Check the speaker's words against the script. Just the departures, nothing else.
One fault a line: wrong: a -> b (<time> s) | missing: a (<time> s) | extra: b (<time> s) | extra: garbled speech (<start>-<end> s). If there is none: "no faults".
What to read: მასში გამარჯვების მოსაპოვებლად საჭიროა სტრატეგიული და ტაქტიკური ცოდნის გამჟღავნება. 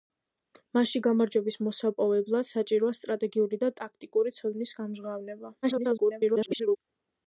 extra: garbled speech (5.6-6.8 s)